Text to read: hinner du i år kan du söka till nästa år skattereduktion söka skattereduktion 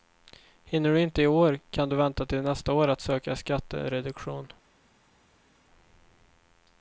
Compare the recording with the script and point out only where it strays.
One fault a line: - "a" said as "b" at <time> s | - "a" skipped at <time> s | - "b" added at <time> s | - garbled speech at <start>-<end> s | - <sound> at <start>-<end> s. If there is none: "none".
- "inte" added at 1.0 s
- "söka" said as "vänta" at 1.9 s
- "skattereduktion" said as "att" at 2.9 s